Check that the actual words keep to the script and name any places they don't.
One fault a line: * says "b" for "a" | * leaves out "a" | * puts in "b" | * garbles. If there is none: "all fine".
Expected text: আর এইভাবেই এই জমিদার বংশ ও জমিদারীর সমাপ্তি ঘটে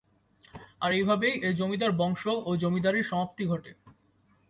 all fine